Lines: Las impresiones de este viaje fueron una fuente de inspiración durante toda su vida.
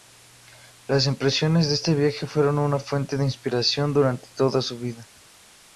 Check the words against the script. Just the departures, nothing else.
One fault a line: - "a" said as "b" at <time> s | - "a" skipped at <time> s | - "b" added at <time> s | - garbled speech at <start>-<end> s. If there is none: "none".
none